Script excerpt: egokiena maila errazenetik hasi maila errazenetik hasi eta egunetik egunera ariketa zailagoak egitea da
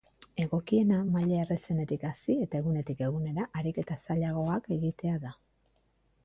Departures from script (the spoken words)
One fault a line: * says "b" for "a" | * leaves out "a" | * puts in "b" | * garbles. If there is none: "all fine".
* leaves out "maila errazenetik hasi"